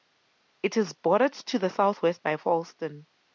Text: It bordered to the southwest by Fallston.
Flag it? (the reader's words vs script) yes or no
yes